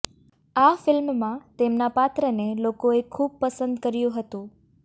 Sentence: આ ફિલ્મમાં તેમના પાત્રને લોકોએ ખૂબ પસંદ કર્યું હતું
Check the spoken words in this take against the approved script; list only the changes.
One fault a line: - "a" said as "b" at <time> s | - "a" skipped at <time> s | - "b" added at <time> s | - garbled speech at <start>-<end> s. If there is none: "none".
none